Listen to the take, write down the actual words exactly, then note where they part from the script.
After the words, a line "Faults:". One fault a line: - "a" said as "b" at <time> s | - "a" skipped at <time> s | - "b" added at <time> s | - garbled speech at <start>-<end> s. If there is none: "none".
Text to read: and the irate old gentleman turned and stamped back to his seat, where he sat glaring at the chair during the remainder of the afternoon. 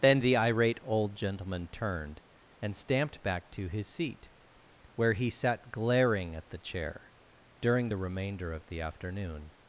then the irate old gentleman turned and stamped back to his seat, where he sat glaring at the chair during the remainder of the afternoon.
Faults:
- "and" said as "then" at 0.0 s